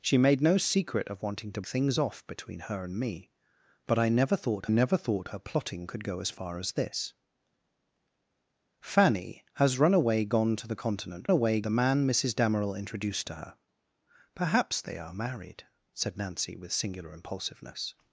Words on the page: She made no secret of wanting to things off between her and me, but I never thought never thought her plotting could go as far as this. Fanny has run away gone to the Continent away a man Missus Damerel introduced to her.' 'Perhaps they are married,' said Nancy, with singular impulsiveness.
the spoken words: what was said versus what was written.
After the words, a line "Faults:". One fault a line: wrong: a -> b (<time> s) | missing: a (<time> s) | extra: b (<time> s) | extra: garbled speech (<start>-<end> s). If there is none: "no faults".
She made no secret of wanting to things off between her and me, but I never thought never thought her plotting could go as far as this. Fanny has run away gone to the Continent away a man Missus Damerel introduced to her.' 'Perhaps they are married,' said Nancy, with singular impulsiveness.
Faults:
no faults